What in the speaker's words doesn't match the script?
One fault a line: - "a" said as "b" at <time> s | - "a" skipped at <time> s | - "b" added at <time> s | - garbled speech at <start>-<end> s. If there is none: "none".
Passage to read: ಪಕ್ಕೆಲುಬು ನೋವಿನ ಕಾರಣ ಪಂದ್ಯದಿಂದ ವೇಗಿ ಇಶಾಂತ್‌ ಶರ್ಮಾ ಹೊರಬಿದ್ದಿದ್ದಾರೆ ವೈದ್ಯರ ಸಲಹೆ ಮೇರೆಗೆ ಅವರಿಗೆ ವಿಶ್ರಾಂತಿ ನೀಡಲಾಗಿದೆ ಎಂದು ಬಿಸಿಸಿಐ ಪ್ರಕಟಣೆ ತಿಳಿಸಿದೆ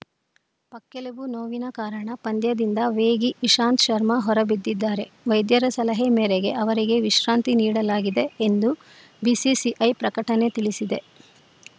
none